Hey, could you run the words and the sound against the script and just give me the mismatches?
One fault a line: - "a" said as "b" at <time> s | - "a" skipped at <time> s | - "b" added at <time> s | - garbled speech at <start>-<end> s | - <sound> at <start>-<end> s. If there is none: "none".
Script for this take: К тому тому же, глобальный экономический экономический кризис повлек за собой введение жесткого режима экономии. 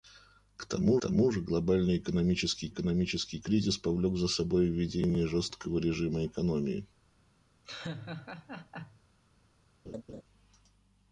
- laugh at 7.6-9.0 s
- laugh at 9.8-10.2 s